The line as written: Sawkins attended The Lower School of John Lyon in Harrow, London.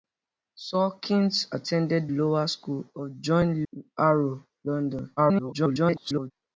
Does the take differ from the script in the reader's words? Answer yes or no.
yes